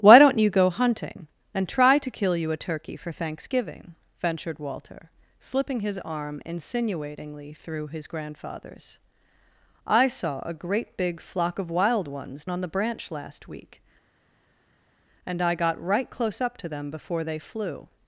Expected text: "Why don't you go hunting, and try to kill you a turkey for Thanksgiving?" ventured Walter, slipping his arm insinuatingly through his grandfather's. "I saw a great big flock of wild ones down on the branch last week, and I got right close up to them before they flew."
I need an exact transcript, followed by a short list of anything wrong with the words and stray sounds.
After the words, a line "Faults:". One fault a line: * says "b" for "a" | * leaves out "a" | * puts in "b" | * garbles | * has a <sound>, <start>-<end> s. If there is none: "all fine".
"Why don't you go hunting, and try to kill you a turkey for Thanksgiving?" ventured Walter, slipping his arm insinuatingly through his grandfather's. "I saw a great big flock of wild ones on the branch last week, and I got right close up to them before they flew."
Faults:
* leaves out "down"